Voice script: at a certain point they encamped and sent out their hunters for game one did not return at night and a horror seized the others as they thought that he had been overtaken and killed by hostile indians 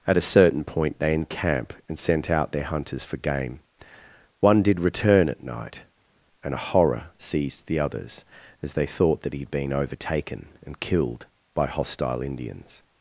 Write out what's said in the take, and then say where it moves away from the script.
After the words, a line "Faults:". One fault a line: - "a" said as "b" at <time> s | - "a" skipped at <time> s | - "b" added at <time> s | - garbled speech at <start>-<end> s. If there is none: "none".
at a certain point they encamp and sent out their hunters for game one did return at night and a horror seized the others as they thought that he had been overtaken and killed by hostile indians
Faults:
- "encamped" said as "encamp" at 1.1 s
- "not" skipped at 4.8 s